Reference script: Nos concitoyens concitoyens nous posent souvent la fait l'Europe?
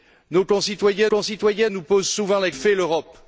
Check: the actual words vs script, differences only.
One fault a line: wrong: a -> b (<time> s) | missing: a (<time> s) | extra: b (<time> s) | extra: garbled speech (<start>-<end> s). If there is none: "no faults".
no faults